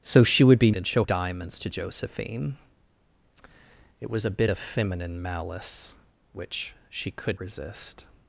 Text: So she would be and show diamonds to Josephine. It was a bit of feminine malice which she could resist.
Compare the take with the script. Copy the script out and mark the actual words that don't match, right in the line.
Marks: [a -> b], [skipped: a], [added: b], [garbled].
So she would be and show diamonds to Josephine. It was a bit of feminine malice which she could resist.